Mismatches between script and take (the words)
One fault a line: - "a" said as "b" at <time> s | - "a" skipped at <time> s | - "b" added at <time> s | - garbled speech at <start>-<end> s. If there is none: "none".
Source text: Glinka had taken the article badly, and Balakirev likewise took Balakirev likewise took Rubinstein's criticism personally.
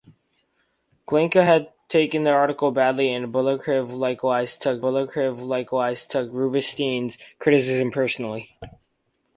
none